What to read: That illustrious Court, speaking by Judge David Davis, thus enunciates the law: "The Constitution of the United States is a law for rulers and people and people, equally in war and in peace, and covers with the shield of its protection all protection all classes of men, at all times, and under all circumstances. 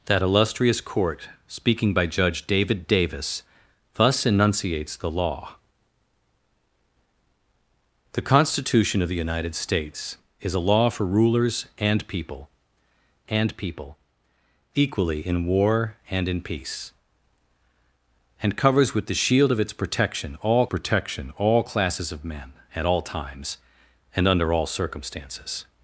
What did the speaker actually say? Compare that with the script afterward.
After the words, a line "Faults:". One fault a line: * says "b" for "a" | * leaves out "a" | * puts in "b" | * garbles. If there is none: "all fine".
That illustrious Court, speaking by Judge David Davis, thus enunciates the law: "The Constitution of the United States is a law for rulers and people and people, equally in war and in peace, and covers with the shield of its protection all protection all classes of men, at all times, and under all circumstances.
Faults:
all fine